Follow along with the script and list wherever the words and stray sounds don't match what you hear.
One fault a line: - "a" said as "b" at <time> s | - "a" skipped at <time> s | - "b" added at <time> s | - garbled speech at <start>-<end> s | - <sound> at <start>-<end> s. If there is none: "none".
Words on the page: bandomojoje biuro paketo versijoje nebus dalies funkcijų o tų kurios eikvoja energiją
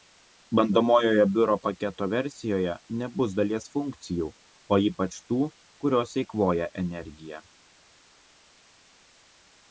- "ypač" added at 4.9 s